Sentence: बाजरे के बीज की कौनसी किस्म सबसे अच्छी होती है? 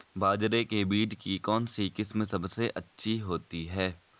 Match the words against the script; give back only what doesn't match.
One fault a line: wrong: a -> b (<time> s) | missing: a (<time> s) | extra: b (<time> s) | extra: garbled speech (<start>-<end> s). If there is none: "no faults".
no faults